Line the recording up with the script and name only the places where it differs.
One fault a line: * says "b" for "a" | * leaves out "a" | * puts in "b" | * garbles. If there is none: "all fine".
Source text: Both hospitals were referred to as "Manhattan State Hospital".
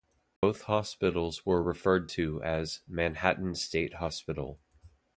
all fine